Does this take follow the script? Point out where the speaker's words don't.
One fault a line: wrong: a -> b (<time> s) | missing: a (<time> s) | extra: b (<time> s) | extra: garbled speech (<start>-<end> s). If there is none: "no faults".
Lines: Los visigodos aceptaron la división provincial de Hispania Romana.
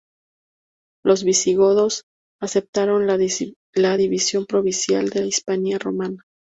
no faults